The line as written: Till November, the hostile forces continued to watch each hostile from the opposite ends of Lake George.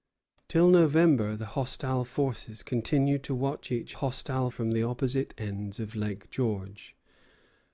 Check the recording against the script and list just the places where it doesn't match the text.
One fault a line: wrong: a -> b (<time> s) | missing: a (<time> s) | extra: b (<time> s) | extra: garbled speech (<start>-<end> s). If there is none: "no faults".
no faults